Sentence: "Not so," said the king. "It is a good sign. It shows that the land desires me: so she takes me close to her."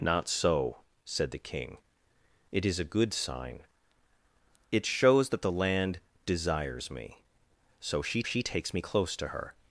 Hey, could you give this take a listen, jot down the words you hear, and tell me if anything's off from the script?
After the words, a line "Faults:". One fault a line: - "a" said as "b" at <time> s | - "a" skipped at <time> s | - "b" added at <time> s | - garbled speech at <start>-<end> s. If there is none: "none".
"Not so," said the king. "It is a good sign. It shows that the land desires me: so she she takes me close to her."
Faults:
- "she" added at 8.2 s